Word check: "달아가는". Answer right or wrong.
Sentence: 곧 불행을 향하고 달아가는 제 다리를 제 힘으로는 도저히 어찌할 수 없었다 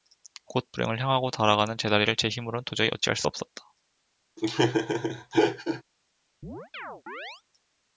right